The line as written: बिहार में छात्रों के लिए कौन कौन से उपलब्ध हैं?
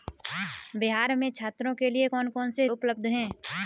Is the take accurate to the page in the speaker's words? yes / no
yes